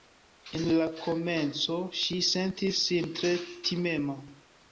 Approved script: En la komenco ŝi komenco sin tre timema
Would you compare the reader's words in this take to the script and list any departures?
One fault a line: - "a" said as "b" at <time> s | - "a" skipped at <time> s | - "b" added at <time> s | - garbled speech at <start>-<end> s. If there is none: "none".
- "komenco" said as "sentis" at 2.3 s